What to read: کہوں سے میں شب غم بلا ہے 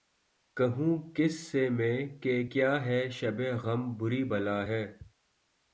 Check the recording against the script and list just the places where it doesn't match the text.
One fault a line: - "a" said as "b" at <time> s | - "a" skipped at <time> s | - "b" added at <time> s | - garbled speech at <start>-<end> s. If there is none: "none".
- "کس" added at 1.1 s
- "کہ کیا ہے" added at 2.2 s
- "بری" added at 4.0 s